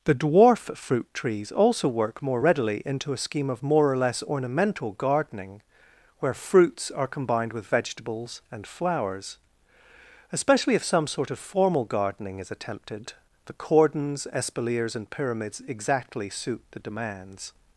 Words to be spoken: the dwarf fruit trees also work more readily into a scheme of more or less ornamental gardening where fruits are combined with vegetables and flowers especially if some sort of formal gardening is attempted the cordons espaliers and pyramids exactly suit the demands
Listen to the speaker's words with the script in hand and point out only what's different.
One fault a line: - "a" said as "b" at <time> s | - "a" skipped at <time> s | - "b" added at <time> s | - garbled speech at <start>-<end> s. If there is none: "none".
none